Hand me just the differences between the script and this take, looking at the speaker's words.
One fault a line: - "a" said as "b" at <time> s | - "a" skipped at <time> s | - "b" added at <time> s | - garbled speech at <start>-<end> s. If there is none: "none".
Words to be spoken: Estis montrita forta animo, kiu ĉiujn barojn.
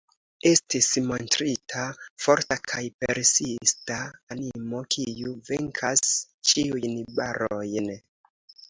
- "kaj persista" added at 2.7 s
- "venkas" added at 5.5 s